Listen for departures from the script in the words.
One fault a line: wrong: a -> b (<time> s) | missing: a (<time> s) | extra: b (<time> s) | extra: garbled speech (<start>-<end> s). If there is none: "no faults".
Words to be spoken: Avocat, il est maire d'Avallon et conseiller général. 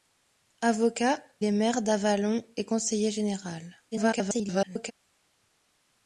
missing: il (1.2 s)
extra: garbled speech (3.9-4.9 s)